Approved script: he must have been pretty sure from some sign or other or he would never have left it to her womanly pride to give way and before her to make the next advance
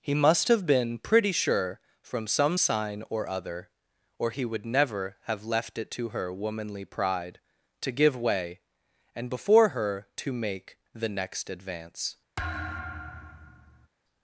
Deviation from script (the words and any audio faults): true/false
true